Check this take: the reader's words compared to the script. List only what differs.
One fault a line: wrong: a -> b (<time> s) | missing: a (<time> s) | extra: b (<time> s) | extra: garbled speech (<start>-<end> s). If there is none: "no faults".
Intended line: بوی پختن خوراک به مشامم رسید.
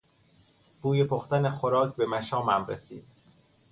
no faults